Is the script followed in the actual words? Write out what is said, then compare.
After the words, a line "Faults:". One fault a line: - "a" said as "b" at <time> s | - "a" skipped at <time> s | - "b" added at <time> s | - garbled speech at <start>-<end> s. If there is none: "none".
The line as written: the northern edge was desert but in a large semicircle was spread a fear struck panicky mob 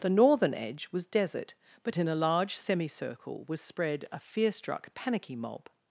the northern edge was desert but in a large semicircle was spread a fear struck panicky mob
Faults:
none